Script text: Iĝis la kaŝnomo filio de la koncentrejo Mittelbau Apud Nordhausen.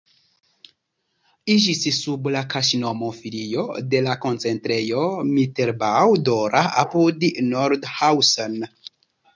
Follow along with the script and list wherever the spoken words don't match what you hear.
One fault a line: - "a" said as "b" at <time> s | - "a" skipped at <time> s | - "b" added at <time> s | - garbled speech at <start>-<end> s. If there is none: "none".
- "sub" added at 2.0 s
- "Dora" added at 6.3 s